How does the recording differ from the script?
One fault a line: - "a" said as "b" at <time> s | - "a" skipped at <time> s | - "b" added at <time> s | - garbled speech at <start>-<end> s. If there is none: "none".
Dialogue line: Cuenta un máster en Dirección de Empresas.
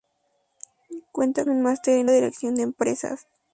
none